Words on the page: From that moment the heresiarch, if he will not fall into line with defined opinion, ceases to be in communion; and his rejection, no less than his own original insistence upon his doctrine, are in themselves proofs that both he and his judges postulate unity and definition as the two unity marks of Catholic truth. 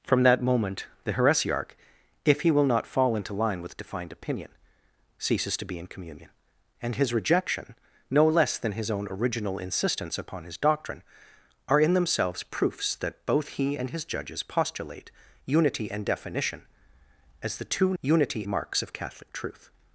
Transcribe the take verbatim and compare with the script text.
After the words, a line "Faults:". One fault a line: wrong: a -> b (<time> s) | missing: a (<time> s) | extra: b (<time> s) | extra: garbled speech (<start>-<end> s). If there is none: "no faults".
From that moment the heresiarch, if he will not fall into line with defined opinion, ceases to be in communion; and his rejection, no less than his own original insistence upon his doctrine, are in themselves proofs that both he and his judges postulate unity and definition as the two unity marks of Catholic truth.
Faults:
no faults